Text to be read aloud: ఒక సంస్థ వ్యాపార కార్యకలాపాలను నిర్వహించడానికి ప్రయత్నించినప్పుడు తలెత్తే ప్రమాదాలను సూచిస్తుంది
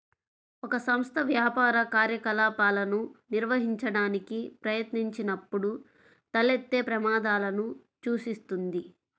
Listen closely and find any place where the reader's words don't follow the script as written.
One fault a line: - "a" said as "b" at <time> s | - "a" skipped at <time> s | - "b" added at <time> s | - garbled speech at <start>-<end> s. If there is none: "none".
none